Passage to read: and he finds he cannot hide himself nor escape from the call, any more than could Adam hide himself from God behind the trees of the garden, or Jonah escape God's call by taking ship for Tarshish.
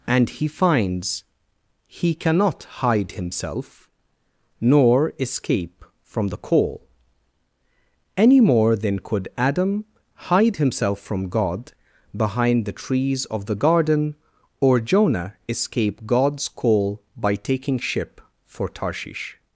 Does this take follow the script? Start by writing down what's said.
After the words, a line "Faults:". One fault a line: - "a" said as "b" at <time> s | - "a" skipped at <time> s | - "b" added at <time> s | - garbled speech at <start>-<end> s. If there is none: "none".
and he finds he cannot hide himself nor escape from the call, any more than could Adam hide himself from God behind the trees of the garden, or Jonah escape God's call by taking ship for Tarshish.
Faults:
none